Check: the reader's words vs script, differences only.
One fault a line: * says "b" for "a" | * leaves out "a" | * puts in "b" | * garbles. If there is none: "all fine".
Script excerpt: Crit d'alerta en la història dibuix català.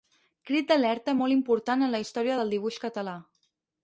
* puts in "molt important"
* puts in "del"